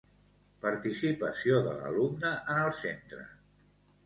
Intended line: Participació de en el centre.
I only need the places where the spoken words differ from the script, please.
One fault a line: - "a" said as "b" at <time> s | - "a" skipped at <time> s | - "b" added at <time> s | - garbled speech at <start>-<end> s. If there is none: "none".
- "l'alumne" added at 1.8 s